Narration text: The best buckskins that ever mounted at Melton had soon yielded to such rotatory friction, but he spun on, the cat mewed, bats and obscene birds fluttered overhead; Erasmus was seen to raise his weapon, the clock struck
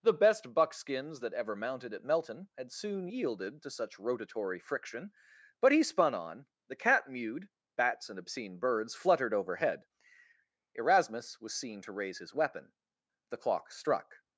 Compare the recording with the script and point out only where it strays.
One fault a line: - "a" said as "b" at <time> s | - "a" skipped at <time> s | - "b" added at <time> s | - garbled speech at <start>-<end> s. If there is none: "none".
none